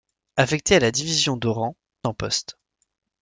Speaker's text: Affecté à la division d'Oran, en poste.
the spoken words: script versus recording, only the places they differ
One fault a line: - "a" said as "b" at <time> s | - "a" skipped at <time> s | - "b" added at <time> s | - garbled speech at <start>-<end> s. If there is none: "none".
none